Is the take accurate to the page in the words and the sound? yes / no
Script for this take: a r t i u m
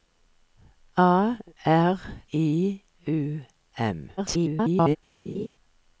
no